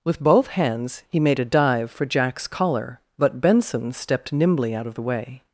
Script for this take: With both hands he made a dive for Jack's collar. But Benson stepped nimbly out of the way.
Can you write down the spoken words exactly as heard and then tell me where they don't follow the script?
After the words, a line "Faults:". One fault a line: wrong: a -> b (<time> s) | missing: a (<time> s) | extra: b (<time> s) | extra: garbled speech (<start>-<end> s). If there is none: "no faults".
With both hands he made a dive for Jack's collar. But Benson stepped nimbly out of the way.
Faults:
no faults